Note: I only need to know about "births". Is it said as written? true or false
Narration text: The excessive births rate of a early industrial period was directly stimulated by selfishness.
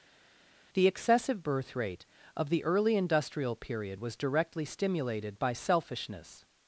false